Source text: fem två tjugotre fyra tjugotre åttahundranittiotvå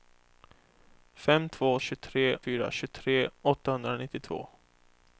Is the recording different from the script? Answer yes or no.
no